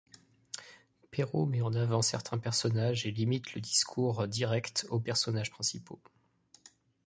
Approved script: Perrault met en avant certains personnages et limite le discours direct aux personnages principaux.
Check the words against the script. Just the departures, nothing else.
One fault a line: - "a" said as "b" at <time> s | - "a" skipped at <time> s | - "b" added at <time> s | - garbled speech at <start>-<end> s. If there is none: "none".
none